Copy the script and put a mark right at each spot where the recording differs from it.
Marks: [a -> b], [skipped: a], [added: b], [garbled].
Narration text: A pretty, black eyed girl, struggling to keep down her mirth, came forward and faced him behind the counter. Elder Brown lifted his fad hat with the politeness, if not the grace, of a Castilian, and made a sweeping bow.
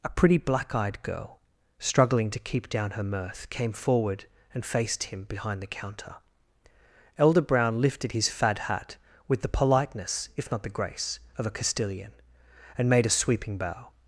A pretty, black eyed girl, struggling to keep down her mirth, came forward and faced him behind the counter. Elder Brown lifted his fad hat with the politeness, if not the grace, of a Castilian, and made a sweeping bow.